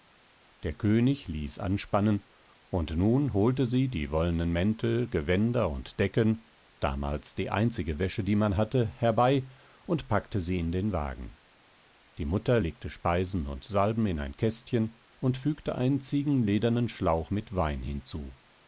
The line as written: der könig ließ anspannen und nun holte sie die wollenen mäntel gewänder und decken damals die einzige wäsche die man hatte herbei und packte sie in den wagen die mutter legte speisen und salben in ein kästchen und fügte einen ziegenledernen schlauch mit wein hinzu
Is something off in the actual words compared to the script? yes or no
no